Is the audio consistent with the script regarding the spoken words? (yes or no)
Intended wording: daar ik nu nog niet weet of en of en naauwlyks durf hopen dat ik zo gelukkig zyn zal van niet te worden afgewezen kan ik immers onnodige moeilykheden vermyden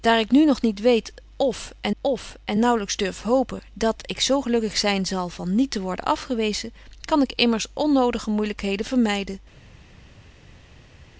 yes